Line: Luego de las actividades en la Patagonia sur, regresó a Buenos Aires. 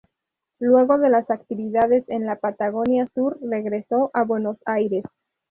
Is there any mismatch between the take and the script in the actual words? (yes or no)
no